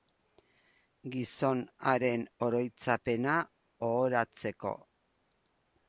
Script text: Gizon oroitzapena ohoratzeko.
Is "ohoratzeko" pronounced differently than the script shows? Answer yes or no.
no